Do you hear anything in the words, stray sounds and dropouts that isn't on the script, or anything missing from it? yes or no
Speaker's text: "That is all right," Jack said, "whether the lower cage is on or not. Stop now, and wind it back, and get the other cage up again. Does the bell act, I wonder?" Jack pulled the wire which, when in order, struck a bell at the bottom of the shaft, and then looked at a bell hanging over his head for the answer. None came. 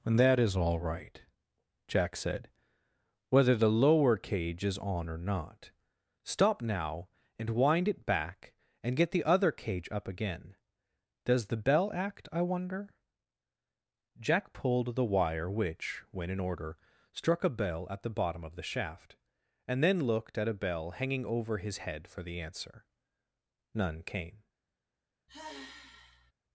yes